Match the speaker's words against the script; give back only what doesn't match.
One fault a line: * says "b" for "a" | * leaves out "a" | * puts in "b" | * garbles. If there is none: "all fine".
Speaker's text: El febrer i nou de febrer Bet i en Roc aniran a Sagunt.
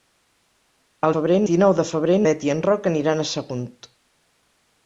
all fine